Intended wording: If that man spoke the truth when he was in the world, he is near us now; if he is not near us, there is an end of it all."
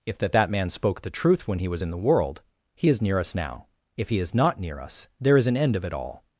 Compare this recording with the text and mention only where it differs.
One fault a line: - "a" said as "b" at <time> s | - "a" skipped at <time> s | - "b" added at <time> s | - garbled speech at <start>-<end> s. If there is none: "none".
- "that" added at 0.3 s